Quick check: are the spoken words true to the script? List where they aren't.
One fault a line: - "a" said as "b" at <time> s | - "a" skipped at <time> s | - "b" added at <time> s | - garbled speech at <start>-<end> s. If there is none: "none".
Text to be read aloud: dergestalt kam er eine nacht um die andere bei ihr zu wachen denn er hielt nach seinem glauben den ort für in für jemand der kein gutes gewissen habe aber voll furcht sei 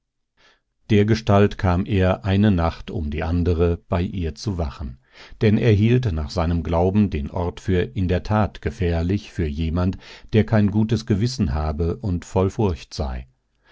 - "der tat gefährlich" added at 8.1 s
- "aber" said as "und" at 12.0 s